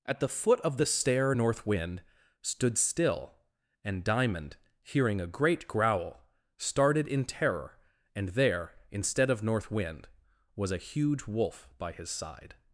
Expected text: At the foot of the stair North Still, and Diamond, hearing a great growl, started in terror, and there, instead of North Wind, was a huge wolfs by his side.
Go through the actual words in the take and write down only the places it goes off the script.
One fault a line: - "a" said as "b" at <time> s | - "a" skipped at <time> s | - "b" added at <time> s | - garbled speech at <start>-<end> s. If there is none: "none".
- "Wind stood" added at 1.7 s
- "wolfs" said as "wolf" at 11.3 s